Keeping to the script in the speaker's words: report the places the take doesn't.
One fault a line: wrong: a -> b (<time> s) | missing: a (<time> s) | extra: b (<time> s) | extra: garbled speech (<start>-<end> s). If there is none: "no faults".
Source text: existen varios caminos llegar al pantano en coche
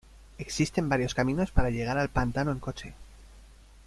extra: para (1.5 s)